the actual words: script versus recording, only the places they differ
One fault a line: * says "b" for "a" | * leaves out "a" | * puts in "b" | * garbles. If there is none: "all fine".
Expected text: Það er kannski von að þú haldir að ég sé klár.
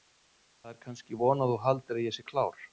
all fine